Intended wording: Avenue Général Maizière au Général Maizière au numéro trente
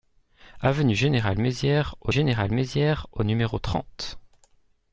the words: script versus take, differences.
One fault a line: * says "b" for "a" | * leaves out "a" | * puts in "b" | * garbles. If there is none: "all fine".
all fine